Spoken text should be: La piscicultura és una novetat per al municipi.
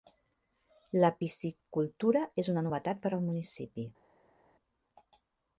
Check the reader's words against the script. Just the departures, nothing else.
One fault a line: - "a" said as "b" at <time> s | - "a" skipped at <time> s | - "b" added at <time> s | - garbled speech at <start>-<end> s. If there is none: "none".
none